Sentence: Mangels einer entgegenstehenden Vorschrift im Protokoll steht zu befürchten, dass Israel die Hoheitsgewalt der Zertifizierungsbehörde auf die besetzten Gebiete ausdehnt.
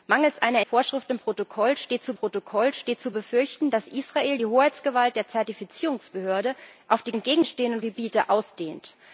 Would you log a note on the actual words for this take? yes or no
yes